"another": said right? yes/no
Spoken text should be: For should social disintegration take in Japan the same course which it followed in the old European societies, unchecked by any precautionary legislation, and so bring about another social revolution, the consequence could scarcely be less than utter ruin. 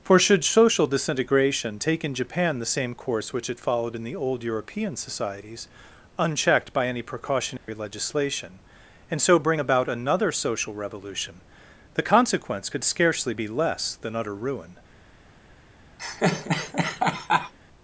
yes